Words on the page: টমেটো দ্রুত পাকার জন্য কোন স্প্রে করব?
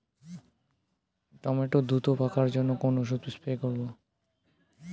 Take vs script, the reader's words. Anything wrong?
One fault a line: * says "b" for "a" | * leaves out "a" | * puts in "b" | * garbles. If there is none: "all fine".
* puts in "ওষুধ"